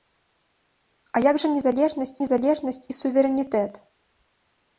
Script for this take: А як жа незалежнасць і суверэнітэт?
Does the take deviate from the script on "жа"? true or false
false